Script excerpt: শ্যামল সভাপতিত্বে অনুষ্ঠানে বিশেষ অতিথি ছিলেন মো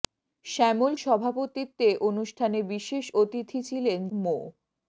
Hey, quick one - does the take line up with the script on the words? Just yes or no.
yes